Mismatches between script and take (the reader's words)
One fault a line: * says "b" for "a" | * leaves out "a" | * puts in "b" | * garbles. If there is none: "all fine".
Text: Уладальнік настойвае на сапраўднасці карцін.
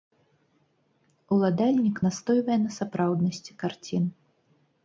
all fine